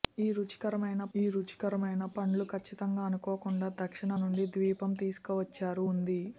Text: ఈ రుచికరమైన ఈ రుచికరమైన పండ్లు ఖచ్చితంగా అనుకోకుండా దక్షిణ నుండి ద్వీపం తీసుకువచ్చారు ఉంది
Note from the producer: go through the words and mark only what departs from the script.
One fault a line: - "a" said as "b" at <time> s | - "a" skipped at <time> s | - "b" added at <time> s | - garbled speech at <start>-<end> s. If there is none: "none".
none